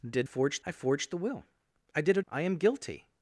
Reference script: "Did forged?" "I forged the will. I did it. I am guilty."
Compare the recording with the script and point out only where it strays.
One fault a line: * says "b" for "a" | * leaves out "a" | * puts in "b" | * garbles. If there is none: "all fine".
all fine